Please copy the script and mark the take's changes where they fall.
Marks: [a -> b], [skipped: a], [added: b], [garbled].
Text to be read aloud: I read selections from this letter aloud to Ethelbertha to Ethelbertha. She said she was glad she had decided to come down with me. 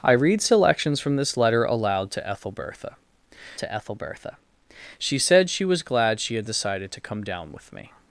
I read selections from this letter aloud to Ethelbertha to Ethelbertha. She said she was glad she had decided to come down with me.